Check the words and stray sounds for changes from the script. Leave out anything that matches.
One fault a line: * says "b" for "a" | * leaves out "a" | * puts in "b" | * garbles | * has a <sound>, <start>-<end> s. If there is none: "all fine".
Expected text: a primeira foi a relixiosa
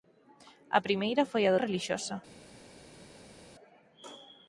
all fine